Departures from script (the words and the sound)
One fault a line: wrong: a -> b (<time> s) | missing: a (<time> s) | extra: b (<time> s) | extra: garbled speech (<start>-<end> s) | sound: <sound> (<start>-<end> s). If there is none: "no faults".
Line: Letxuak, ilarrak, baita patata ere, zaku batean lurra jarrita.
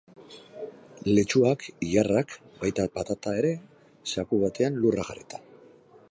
no faults